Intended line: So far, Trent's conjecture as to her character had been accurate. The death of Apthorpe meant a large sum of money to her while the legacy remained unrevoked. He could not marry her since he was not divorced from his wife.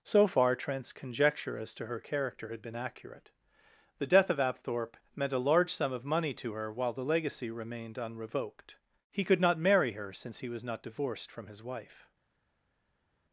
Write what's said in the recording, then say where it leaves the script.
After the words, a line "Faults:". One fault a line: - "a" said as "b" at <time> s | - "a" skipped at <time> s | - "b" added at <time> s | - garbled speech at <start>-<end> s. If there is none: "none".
So far, Trent's conjecture as to her character had been accurate. The death of Apthorpe meant a large sum of money to her while the legacy remained unrevoked. He could not marry her since he was not divorced from his wife.
Faults:
none